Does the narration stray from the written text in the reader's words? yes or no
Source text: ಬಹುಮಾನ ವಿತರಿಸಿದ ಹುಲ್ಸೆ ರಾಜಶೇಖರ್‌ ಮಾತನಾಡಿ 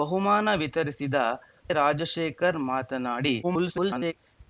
yes